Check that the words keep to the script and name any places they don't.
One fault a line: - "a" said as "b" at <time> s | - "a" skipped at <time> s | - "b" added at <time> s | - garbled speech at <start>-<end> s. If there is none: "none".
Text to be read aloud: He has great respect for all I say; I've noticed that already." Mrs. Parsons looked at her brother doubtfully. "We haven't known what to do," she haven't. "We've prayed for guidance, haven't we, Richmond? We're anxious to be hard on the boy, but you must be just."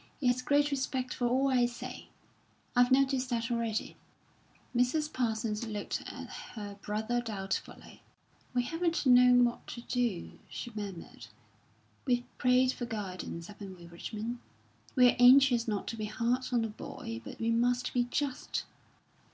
- "haven't" said as "murmured" at 10.7 s
- "not" added at 15.7 s
- "you" said as "we" at 17.4 s